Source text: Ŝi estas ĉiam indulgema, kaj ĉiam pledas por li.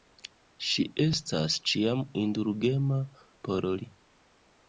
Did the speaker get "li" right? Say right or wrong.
right